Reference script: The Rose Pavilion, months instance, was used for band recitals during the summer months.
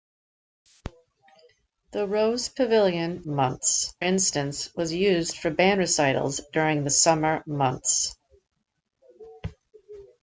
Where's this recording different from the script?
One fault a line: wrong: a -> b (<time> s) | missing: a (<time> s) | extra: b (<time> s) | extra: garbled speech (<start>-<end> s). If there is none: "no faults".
no faults